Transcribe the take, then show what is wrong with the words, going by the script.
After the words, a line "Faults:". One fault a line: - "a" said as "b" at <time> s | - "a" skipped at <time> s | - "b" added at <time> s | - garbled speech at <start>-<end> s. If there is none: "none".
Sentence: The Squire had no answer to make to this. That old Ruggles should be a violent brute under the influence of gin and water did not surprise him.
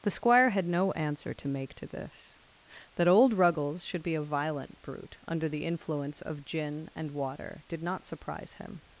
The Squire had no answer to make to this. That old Ruggles should be a violent brute under the influence of gin and water did not surprise him.
Faults:
none